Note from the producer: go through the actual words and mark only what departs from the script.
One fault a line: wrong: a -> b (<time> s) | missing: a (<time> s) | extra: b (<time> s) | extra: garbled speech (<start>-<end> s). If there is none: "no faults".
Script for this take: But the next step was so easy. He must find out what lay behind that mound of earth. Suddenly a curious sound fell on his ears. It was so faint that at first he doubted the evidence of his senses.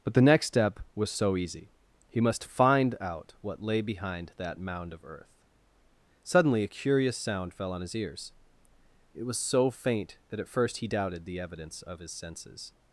no faults